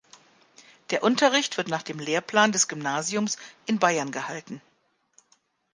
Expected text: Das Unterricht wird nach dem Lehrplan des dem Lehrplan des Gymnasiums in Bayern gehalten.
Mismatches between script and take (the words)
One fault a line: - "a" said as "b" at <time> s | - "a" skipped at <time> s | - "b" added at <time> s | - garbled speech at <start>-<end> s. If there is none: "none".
- "Das" said as "Der" at 0.9 s
- "dem Lehrplan des" skipped at 2.7 s